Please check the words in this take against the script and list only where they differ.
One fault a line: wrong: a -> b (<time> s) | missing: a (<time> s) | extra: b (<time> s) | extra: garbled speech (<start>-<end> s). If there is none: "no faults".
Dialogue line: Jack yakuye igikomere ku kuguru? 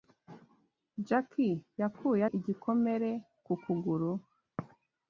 no faults